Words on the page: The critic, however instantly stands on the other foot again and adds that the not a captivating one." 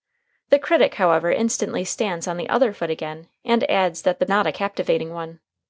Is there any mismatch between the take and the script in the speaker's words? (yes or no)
no